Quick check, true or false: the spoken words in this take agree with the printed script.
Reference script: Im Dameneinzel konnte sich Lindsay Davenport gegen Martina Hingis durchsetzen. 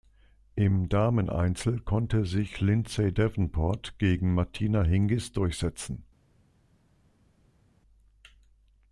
true